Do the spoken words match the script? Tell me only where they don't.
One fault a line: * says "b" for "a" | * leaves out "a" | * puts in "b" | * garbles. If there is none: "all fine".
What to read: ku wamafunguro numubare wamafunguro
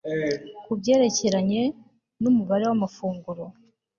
* says "byerekeranye" for "wamafunguro"